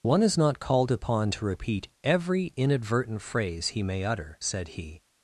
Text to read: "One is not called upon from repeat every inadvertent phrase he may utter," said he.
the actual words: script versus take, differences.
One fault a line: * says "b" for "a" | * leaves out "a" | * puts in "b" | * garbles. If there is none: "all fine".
* says "to" for "from"